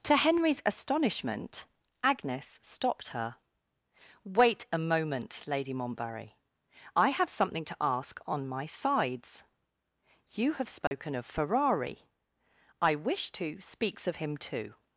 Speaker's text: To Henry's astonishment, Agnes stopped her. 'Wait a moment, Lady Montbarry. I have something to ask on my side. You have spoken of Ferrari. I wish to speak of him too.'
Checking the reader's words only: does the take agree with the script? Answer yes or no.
no